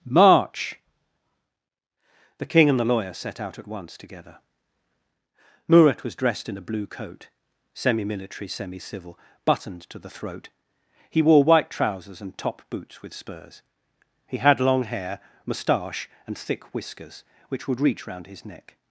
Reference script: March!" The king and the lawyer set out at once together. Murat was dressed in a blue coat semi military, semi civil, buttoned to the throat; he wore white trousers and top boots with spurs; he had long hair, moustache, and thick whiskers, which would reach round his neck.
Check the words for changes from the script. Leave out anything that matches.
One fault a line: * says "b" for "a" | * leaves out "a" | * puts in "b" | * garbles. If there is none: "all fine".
all fine